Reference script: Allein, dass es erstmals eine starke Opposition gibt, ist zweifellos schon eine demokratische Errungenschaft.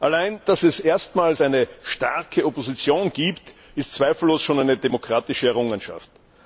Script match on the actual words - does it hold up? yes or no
yes